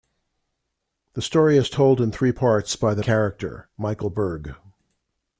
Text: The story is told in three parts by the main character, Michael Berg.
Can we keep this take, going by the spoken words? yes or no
no